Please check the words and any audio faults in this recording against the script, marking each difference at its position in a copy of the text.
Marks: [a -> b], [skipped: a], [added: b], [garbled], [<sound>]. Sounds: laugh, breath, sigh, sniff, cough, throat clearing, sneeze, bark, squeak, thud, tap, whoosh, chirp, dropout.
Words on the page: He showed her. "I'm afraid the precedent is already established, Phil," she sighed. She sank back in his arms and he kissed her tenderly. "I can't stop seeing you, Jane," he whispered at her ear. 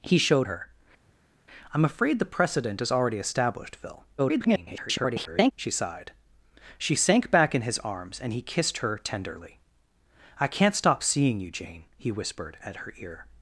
He showed her. "I'm afraid the precedent is already established, Phil," [garbled] she sighed. She sank back in his arms and he kissed her tenderly. "I can't stop seeing you, Jane," he whispered at her ear.